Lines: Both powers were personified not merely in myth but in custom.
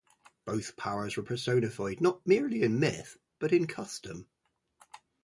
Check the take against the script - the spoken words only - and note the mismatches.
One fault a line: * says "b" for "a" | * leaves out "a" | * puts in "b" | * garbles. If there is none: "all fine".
all fine